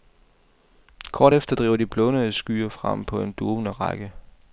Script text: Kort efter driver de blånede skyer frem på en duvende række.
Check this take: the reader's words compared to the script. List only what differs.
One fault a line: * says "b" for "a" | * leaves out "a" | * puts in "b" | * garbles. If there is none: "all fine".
all fine